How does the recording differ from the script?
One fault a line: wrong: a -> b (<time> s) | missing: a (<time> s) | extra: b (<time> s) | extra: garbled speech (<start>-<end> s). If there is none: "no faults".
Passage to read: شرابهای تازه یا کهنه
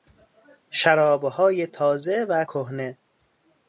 wrong: یا -> و (2.3 s)